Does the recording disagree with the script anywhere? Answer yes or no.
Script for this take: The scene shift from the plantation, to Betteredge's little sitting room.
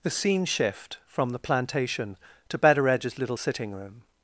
no